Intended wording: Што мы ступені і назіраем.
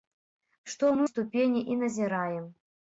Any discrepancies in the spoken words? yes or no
no